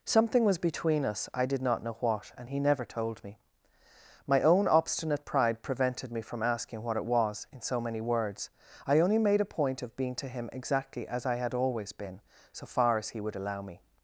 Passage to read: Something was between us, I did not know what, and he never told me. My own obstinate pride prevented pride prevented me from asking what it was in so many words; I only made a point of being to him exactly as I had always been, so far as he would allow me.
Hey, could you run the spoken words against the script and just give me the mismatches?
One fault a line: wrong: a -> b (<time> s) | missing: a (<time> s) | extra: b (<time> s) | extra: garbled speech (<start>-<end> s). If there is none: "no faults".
missing: pride prevented (6.1 s)